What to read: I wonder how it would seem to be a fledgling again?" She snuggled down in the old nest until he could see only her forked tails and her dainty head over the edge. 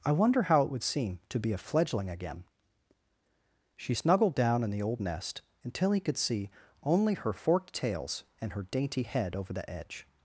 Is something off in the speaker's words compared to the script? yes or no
no